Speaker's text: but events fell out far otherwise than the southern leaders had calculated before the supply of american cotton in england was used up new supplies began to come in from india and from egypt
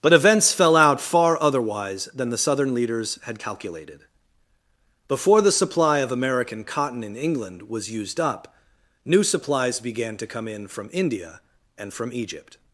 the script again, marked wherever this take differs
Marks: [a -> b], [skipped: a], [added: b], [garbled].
but events fell out far otherwise than the southern leaders had calculated before the supply of american cotton in england was used up new supplies began to come in from india and from egypt